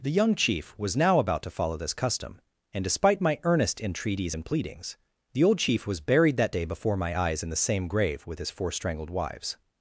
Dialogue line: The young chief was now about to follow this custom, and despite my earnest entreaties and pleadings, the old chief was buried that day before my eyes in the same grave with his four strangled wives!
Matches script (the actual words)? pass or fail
pass